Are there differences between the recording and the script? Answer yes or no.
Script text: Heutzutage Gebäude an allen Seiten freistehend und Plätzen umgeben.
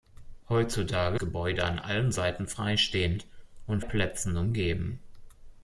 no